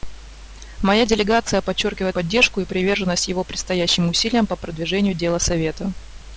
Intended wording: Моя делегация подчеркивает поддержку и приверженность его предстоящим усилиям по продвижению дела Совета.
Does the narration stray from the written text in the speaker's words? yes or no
no